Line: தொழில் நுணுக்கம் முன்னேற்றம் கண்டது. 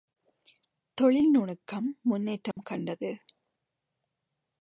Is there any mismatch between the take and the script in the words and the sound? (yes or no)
yes